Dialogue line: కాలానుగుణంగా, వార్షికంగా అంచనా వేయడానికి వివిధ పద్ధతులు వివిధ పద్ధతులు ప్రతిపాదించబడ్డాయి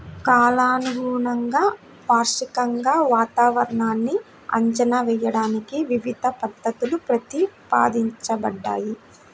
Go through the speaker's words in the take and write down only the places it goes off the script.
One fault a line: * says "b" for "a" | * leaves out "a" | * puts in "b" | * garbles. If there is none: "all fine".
* puts in "వాతావరణాన్ని"
* leaves out "వివిధ పద్ధతులు"